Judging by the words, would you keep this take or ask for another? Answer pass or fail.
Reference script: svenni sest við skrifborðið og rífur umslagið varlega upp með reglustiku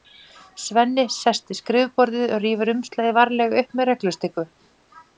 pass